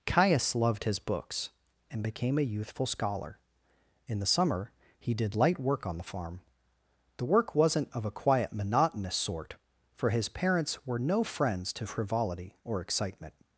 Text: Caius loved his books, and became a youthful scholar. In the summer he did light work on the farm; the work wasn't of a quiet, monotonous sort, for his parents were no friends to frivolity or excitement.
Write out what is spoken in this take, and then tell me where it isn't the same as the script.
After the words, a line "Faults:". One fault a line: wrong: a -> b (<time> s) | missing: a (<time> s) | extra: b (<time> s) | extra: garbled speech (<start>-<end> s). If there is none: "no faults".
Caius loved his books, and became a youthful scholar. In the summer he did light work on the farm; the work wasn't of a quiet, monotonous sort, for his parents were no friends to frivolity or excitement.
Faults:
no faults